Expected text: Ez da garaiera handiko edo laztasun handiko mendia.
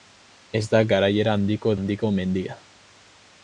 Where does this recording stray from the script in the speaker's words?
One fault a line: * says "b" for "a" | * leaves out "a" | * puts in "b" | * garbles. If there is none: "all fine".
* leaves out "edo laztasun"